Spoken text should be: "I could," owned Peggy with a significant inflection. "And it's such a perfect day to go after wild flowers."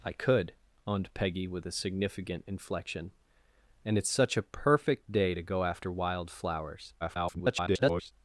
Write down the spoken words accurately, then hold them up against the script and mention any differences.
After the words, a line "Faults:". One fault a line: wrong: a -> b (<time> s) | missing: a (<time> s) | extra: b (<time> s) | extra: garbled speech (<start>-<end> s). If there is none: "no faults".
"I could," owned Peggy with a significant inflection. "And it's such a perfect day to go after wild flowers." [garbled]
Faults:
extra: garbled speech (7.0-8.1 s)